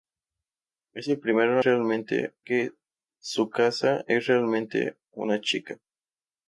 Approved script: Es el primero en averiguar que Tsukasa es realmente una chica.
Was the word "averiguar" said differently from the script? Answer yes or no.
yes